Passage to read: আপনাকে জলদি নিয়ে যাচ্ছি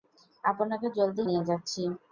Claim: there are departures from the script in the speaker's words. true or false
false